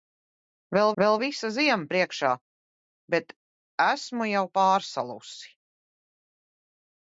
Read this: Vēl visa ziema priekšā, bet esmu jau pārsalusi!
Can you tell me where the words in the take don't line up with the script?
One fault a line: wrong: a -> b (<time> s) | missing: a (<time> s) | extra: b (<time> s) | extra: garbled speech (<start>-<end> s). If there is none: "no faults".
extra: vēl (1.0 s)